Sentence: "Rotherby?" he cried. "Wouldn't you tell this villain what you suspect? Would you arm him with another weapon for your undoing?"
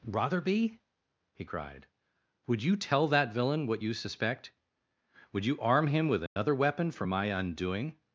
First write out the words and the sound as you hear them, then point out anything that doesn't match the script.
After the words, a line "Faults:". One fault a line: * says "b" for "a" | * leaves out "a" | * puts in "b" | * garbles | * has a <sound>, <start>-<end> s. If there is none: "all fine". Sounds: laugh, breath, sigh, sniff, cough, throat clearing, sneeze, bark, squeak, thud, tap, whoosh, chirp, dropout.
"Rotherby?" he cried. "Would you tell that villain what you suspect? Would you arm him with another weapon for my undoing?"
Faults:
* says "Would" for "Wouldn't"
* says "that" for "this"
* has a dropout, 6.3-6.4 s
* says "my" for "your"